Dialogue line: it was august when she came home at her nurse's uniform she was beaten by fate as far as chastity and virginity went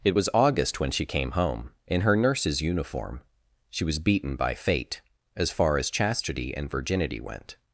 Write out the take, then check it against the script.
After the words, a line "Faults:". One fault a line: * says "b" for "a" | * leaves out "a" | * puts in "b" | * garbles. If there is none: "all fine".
it was august when she came home in her nurse's uniform she was beaten by fate as far as chastity and virginity went
Faults:
* says "in" for "at"